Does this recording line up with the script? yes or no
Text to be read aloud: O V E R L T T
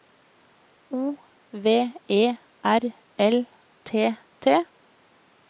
yes